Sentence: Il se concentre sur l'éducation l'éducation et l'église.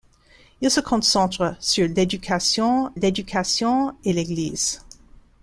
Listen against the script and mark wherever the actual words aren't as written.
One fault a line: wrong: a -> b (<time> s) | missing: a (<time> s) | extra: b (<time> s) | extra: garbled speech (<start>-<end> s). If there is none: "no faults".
no faults